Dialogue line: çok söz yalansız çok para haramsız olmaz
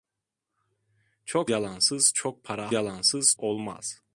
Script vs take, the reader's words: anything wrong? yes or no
yes